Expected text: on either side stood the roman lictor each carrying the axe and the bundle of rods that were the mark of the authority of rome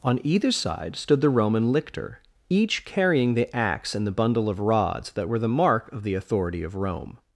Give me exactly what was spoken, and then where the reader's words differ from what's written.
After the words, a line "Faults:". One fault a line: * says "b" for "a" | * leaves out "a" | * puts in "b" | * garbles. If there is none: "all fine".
on either side stood the roman lictor each carrying the axe and the bundle of rods that were the mark of the authority of rome
Faults:
all fine